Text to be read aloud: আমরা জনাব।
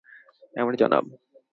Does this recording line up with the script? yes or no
yes